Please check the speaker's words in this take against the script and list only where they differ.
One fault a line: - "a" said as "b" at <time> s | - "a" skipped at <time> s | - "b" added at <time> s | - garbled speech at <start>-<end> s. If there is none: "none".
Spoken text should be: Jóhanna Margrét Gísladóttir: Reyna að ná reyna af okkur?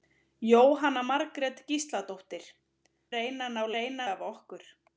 none